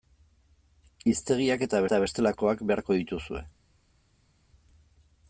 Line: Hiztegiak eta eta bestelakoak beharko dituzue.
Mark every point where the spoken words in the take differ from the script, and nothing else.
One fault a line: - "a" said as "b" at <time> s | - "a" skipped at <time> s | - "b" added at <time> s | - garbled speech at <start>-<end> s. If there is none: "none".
none